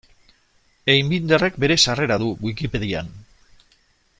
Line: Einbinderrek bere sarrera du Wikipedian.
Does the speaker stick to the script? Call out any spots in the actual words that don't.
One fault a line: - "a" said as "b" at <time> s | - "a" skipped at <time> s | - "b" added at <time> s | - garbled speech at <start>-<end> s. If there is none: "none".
none